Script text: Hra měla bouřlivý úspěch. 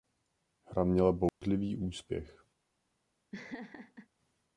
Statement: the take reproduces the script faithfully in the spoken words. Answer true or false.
true